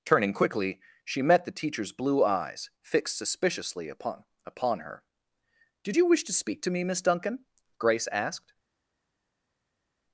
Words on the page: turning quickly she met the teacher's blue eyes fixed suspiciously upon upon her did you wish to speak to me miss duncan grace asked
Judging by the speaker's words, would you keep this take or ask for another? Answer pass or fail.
pass